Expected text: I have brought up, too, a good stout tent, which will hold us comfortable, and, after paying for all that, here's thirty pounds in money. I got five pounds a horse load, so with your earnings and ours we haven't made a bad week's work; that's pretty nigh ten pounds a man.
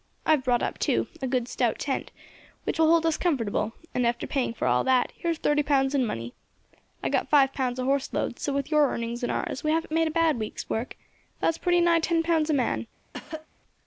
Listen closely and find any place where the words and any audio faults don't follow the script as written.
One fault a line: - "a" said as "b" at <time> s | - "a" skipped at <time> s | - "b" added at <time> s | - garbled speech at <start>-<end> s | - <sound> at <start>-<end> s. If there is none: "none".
- cough at 13.1-13.5 s